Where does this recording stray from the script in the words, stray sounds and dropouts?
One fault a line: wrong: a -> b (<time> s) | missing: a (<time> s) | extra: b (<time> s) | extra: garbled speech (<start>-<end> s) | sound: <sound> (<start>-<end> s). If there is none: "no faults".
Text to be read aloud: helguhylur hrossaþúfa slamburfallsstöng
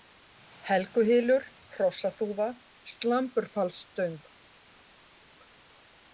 no faults